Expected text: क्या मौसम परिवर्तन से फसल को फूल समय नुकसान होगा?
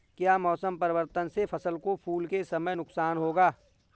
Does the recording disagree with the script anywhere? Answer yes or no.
yes